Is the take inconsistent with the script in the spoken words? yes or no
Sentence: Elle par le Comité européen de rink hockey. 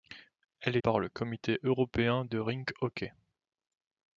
no